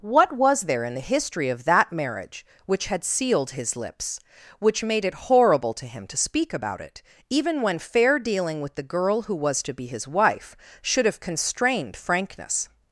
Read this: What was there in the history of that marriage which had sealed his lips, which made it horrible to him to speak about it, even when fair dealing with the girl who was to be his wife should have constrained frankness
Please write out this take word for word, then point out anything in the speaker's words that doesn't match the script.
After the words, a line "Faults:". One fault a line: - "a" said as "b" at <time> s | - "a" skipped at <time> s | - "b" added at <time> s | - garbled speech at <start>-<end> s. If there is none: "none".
What was there in the history of that marriage which had sealed his lips, which made it horrible to him to speak about it, even when fair dealing with the girl who was to be his wife should have constrained frankness
Faults:
none